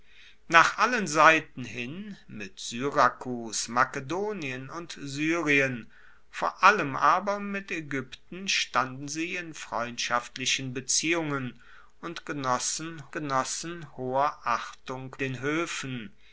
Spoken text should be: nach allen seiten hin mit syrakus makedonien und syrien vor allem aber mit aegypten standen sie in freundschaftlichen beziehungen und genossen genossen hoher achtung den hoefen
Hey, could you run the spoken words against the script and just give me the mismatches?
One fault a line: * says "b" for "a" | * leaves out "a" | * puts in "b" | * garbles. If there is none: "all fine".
all fine